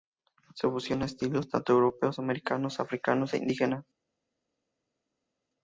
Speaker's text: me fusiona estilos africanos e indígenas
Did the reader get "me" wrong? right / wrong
wrong